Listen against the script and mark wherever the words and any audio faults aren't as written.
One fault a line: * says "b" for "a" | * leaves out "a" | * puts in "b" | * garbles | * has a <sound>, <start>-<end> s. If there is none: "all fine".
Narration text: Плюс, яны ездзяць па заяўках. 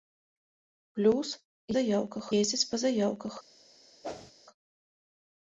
* says "заяўках" for "яны"
* has a whoosh, 4.0-4.3 s